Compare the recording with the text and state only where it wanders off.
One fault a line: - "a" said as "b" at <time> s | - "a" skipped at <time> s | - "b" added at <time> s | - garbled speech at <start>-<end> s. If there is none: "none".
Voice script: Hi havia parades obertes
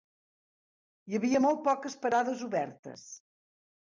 - "molt poques" added at 1.4 s